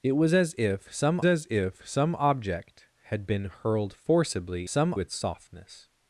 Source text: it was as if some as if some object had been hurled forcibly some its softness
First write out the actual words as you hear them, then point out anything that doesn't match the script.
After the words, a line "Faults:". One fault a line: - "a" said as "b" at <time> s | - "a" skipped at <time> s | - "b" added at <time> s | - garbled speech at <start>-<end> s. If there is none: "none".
it was as if some as if some object had been hurled forcibly some its softness
Faults:
none